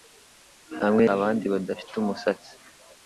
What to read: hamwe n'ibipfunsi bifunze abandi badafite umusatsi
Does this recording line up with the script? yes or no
no